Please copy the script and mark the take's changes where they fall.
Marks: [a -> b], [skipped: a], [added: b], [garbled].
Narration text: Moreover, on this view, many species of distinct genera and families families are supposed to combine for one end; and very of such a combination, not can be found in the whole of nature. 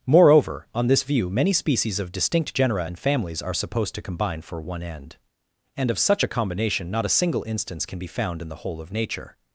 Moreover, on this view, many species of distinct genera and families [skipped: families] are supposed to combine for one end; and [skipped: very] of such a combination, not [added: a single instance] can be found in the whole of nature.